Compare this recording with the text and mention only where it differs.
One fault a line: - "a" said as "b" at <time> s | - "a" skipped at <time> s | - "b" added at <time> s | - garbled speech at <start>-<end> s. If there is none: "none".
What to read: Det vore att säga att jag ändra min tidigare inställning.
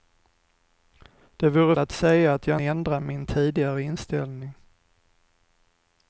none